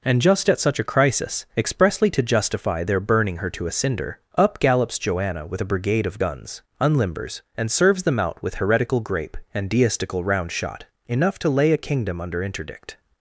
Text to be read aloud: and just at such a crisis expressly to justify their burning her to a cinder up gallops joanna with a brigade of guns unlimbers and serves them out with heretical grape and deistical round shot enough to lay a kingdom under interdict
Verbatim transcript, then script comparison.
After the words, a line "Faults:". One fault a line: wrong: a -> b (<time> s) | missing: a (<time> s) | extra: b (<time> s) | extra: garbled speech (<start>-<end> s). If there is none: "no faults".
and just at such a crisis expressly to justify their burning her to a cinder up gallops joanna with a brigade of guns unlimbers and serves them out with heretical grape and deistical round shot enough to lay a kingdom under interdict
Faults:
no faults